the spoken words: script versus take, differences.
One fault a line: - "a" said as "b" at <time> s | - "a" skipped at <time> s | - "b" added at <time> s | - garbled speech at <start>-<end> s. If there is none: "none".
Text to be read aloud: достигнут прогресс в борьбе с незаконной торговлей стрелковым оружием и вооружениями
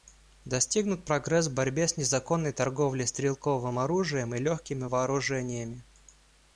- "легкими" added at 4.4 s